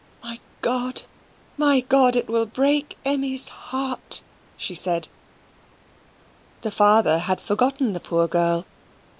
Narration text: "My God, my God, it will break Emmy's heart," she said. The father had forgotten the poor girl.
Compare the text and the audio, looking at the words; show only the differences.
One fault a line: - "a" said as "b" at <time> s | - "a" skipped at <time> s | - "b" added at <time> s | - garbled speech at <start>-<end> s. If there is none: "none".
none